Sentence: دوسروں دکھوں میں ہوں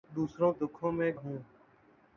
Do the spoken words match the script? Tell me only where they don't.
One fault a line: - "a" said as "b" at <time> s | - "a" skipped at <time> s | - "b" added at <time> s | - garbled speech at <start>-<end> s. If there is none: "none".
none